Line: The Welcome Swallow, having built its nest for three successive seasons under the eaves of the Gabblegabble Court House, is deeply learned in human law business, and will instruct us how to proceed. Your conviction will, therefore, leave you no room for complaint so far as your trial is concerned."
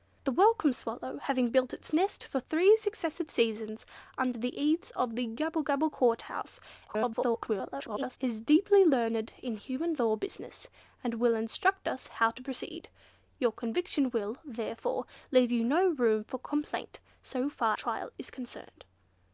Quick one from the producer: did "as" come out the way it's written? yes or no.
no